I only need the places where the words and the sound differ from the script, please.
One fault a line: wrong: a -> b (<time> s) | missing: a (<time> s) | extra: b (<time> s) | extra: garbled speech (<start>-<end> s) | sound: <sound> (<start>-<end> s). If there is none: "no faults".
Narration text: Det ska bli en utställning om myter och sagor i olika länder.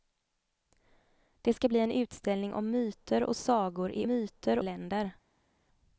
wrong: olika -> myter (4.1 s)